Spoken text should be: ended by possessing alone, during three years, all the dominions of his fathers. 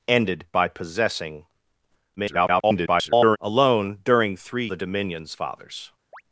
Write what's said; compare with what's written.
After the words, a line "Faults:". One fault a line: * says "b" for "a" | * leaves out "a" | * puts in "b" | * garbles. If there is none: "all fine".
ended by possessing [garbled] alone, during three the dominions fathers.
Faults:
* garbles
* leaves out "years all"
* leaves out "of his"